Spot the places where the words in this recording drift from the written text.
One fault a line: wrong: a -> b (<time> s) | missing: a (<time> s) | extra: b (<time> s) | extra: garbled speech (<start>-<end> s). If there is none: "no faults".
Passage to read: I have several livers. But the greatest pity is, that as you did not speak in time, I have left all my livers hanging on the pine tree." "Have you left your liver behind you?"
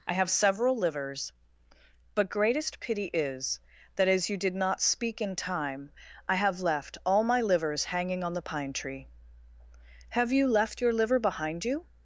missing: the (2.3 s)